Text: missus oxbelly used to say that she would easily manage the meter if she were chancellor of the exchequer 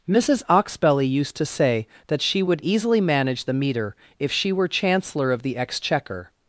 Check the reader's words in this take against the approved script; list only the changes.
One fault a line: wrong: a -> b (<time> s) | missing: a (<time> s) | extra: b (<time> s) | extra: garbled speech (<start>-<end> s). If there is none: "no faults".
no faults